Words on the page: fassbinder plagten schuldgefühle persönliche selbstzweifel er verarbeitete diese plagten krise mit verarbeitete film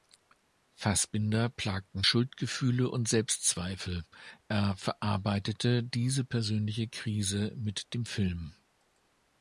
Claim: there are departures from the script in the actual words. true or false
true